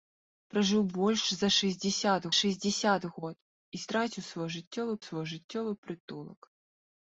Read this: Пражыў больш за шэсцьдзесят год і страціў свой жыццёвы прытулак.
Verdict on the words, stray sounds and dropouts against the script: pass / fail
fail